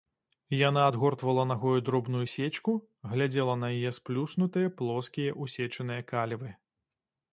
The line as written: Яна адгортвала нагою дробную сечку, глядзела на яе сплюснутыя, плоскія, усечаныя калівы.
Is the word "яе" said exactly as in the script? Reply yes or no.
yes